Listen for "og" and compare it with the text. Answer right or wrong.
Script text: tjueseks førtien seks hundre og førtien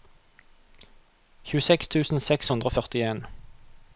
right